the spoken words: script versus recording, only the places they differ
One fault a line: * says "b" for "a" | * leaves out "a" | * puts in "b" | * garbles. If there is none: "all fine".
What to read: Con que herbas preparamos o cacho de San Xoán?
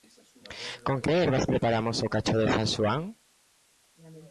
all fine